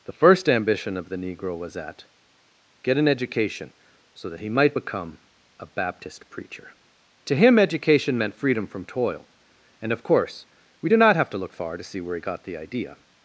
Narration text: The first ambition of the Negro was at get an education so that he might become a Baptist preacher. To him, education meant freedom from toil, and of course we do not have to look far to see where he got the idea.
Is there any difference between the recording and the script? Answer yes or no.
no